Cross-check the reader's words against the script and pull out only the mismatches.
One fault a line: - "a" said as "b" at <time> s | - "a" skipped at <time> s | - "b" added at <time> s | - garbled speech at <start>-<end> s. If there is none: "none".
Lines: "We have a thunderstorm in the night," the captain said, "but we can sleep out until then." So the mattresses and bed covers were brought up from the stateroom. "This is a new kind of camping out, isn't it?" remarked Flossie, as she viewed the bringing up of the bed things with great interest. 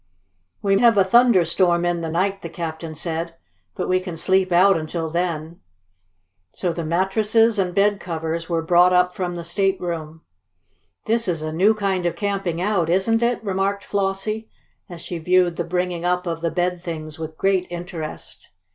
none